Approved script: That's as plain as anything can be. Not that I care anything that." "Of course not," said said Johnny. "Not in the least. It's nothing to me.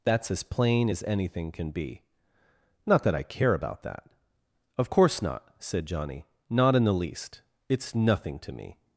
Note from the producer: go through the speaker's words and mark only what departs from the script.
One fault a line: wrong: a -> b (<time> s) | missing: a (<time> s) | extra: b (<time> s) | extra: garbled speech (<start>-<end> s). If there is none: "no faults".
wrong: anything -> about (3.5 s)
missing: said (5.9 s)